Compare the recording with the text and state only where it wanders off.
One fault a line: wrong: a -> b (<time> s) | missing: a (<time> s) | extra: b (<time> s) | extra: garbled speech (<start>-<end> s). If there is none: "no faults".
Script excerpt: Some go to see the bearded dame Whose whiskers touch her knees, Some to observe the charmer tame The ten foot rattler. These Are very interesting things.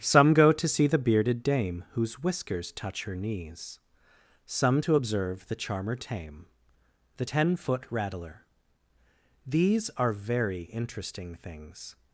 no faults